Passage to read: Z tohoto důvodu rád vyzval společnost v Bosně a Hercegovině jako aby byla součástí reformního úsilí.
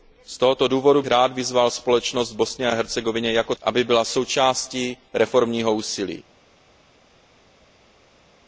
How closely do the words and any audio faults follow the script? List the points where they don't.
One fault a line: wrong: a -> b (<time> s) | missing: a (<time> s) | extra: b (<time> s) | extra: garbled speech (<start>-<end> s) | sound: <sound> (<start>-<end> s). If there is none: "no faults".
no faults